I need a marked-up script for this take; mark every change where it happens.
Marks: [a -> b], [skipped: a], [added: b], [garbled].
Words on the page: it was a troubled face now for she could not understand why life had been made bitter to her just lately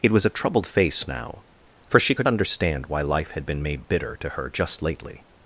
it was a troubled face now for she could [skipped: not] understand why life had been made bitter to her just lately